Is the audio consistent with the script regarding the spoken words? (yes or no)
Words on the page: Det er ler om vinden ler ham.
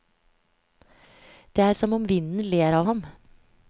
no